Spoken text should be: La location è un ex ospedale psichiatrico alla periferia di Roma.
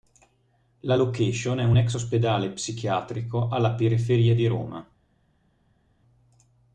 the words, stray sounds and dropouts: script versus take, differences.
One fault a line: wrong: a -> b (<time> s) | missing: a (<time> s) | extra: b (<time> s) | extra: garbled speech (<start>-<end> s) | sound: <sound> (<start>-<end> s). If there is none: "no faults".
no faults